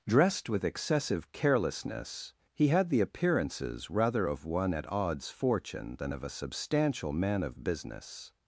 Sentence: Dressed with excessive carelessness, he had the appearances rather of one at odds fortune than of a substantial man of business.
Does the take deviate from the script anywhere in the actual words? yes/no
no